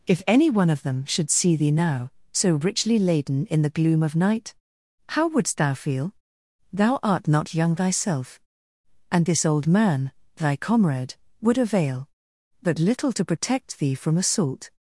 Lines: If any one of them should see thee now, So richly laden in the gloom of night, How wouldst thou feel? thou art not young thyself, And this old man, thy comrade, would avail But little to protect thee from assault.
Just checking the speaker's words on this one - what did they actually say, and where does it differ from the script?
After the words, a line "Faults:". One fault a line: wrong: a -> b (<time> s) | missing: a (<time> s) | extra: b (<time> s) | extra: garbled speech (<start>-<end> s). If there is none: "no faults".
If any one of them should see thee now, So richly laden in the gloom of night, How wouldst thou feel? thou art not young thyself, And this old man, thy comrade, would avail But little to protect thee from assault.
Faults:
no faults